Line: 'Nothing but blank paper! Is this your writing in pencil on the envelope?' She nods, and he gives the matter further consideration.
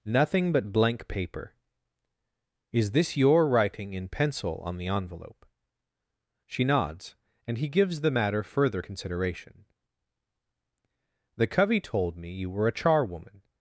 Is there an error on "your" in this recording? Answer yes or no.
no